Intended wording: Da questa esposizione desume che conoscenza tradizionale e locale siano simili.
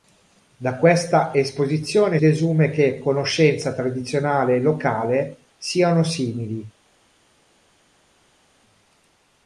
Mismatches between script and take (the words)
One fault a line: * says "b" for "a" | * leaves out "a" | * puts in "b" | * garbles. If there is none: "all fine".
all fine